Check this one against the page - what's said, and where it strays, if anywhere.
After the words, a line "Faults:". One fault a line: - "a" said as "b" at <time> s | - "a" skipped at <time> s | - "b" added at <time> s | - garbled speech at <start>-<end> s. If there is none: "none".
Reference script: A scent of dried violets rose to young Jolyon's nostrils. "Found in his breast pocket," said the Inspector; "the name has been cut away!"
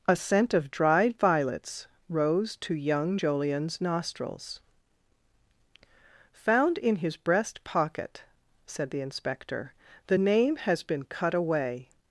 A scent of dried violets rose to young Jolyon's nostrils. "Found in his breast pocket," said the Inspector; "the name has been cut away!"
Faults:
none